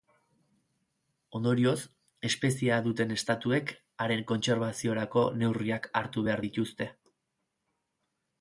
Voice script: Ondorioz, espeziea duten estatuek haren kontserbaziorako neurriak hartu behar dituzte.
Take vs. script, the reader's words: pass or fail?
pass